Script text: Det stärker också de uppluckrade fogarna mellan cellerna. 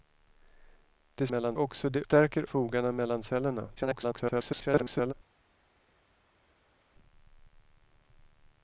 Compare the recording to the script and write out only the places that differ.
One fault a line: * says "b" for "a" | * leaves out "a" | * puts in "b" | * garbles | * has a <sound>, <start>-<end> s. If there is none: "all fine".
* says "mellan" for "stärker"
* says "stärker" for "uppluckrade"
* garbles